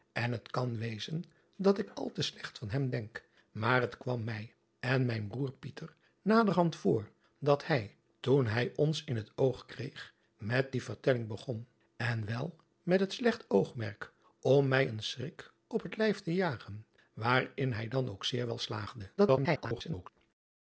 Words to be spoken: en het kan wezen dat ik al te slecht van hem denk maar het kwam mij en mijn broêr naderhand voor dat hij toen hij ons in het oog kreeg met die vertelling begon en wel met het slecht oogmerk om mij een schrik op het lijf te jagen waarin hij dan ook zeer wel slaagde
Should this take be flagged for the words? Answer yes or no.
yes